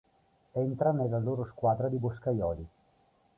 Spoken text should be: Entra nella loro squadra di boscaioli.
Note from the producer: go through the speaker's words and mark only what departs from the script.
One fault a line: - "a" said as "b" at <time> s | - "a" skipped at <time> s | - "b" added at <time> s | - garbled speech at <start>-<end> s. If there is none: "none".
none